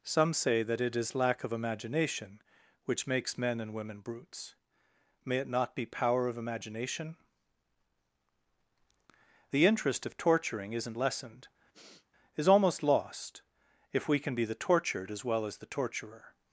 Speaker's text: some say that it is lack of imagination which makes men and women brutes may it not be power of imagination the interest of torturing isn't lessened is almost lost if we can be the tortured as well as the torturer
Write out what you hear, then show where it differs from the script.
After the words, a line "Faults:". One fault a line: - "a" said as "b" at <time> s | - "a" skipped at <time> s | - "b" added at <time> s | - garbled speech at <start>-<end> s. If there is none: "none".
some say that it is lack of imagination which makes men and women brutes may it not be power of imagination the interest of torturing isn't lessened is almost lost if we can be the tortured as well as the torturer
Faults:
none